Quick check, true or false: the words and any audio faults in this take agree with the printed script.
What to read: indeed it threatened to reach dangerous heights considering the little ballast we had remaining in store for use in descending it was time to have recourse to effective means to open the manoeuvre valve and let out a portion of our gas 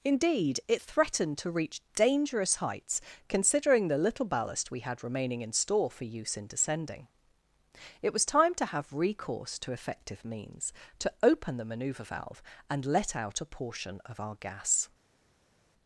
true